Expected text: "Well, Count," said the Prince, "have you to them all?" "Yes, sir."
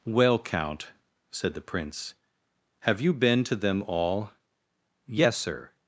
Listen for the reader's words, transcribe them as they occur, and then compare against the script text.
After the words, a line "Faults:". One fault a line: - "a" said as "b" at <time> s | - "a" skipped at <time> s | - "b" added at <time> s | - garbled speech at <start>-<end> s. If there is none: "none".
"Well, Count," said the Prince, "have you been to them all?" "Yes, sir."
Faults:
- "been" added at 3.1 s